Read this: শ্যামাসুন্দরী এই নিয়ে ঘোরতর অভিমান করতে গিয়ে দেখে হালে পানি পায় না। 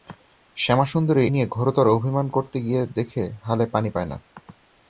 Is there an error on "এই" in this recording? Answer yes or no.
yes